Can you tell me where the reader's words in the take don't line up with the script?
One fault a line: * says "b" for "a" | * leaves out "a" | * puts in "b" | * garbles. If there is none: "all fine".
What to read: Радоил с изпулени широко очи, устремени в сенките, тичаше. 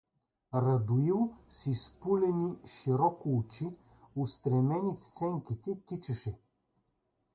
all fine